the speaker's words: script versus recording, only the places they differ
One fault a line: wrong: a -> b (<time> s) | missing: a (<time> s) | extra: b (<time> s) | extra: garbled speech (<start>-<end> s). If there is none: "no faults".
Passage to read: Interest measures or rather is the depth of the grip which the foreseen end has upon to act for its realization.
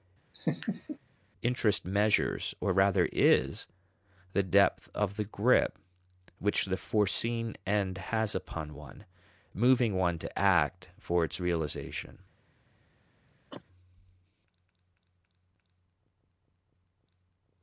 extra: one moving one (8.7 s)